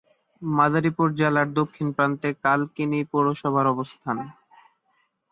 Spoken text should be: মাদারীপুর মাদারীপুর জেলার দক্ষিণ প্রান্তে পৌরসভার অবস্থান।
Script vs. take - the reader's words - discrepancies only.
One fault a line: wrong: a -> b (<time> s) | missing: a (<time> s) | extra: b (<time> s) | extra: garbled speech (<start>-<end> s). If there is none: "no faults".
missing: মাদারীপুর (1.1 s)
extra: কালকিনি (2.4 s)